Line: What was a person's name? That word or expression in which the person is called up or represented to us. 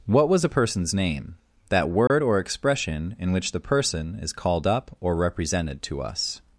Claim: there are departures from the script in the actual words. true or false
false